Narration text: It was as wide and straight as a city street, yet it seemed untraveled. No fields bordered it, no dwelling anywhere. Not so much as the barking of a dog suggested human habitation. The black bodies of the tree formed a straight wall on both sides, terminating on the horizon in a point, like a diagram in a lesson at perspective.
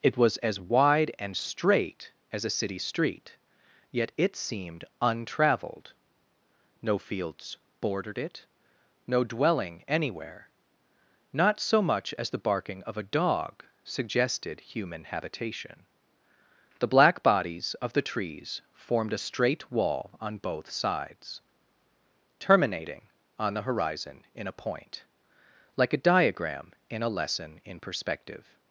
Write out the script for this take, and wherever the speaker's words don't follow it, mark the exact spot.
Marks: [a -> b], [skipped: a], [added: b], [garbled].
It was as wide and straight as a city street, yet it seemed untraveled. No fields bordered it, no dwelling anywhere. Not so much as the barking of a dog suggested human habitation. The black bodies of the [tree -> trees] formed a straight wall on both sides, terminating on the horizon in a point, like a diagram in a lesson [at -> in] perspective.